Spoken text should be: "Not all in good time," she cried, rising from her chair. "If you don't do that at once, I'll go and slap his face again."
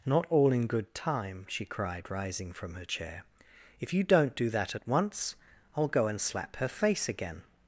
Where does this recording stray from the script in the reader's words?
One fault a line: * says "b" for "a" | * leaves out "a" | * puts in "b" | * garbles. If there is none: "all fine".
* says "her" for "his"